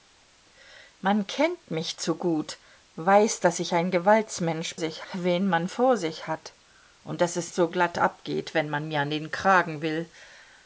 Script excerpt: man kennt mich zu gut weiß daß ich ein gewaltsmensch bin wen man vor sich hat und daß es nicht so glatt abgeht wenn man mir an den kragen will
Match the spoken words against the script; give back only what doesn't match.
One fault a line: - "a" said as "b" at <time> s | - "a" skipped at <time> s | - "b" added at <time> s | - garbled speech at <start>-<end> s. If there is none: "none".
- "bin" said as "sich" at 4.8 s
- "nicht" skipped at 7.5 s